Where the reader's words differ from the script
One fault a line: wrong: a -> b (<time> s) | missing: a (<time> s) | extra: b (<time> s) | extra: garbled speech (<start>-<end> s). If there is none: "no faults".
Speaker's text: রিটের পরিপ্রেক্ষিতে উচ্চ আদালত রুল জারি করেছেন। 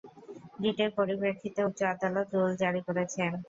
no faults